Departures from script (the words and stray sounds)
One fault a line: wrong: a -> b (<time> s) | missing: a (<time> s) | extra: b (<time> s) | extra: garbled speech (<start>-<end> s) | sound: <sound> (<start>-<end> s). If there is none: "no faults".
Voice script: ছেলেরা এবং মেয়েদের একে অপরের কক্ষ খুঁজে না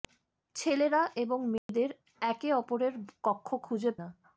sound: dropout (1.6-1.7 s)